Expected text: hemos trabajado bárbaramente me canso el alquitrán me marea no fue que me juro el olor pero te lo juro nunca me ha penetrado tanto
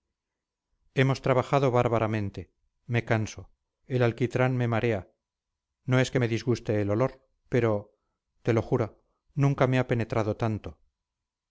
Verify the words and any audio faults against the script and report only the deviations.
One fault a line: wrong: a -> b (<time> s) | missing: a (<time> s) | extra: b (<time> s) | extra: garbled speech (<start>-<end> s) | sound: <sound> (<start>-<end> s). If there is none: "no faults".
wrong: fue -> es (6.0 s)
wrong: juro -> disguste (6.3 s)